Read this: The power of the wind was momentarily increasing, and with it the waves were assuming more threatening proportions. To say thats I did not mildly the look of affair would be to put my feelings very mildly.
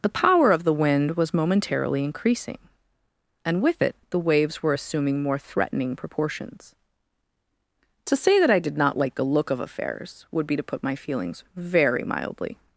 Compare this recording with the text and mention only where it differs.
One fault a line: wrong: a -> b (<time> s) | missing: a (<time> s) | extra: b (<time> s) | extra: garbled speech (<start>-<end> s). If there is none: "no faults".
wrong: thats -> that (8.4 s)
wrong: mildly -> like (9.0 s)
wrong: affair -> affairs (9.6 s)